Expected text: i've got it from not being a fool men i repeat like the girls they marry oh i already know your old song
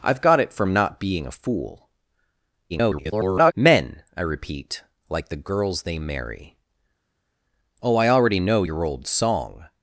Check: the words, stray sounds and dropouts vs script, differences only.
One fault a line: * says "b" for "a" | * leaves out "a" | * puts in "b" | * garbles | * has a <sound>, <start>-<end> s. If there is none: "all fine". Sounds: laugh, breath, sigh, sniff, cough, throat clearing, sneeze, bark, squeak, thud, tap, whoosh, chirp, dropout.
* garbles